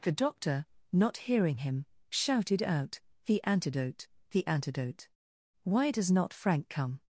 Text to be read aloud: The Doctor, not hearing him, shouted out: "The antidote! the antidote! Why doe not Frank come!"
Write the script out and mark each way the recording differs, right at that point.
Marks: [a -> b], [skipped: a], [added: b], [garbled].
The Doctor, not hearing him, shouted out: "The antidote! the antidote! Why [doe -> does] not Frank come!"